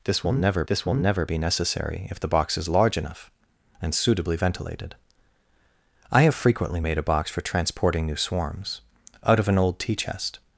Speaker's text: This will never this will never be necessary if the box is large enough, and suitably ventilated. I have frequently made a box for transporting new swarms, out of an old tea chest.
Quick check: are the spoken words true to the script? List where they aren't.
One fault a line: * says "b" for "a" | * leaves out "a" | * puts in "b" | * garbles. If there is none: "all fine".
all fine